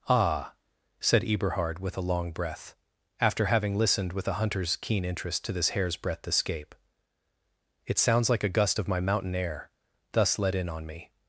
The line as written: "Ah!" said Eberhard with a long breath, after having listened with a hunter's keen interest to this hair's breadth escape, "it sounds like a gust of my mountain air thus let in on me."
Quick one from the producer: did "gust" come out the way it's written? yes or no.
yes